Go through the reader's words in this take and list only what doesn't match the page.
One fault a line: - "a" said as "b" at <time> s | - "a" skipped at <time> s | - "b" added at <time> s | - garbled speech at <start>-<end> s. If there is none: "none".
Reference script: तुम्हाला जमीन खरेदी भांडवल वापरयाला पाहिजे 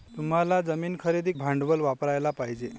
none